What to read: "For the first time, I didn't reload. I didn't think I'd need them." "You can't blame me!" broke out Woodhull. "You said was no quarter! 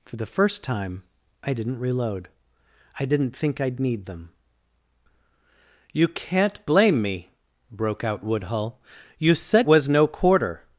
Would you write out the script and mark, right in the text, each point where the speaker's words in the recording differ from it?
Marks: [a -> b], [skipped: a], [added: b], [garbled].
"For the first time, I didn't reload. I didn't think I'd need them." "You can't blame me!" broke out Woodhull. "You said was no quarter!